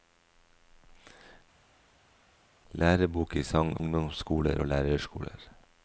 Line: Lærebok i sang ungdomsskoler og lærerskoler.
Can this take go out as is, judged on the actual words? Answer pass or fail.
pass